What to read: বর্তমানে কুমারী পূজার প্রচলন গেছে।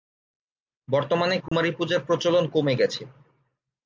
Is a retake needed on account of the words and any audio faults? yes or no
yes